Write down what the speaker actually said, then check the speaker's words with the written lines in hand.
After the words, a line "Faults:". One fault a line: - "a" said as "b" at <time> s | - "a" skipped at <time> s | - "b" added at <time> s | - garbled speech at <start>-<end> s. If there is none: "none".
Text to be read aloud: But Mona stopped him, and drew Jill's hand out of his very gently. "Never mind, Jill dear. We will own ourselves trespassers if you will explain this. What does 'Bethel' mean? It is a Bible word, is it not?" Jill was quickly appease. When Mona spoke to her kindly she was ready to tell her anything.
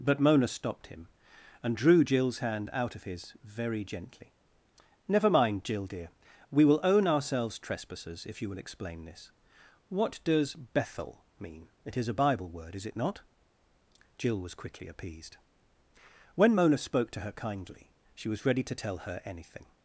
But Mona stopped him, and drew Jill's hand out of his very gently. "Never mind, Jill dear. We will own ourselves trespassers if you will explain this. What does 'Bethel' mean? It is a Bible word, is it not?" Jill was quickly appeased. When Mona spoke to her kindly she was ready to tell her anything.
Faults:
- "appease" said as "appeased" at 14.9 s